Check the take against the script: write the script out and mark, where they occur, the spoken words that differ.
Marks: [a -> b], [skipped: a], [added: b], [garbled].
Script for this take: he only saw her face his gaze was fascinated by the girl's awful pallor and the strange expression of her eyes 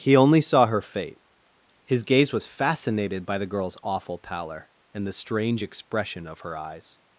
he only saw her [face -> fate] his gaze was fascinated by the girl's awful pallor and the strange expression of her eyes